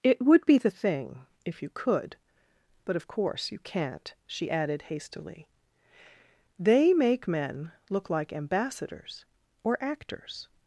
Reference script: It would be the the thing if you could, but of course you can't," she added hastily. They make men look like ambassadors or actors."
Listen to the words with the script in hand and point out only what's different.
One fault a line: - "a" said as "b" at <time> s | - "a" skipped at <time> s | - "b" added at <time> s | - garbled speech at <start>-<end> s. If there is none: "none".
- "the" skipped at 0.7 s